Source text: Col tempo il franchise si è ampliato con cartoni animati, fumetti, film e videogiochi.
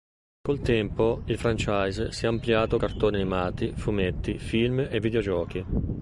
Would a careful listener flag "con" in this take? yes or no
yes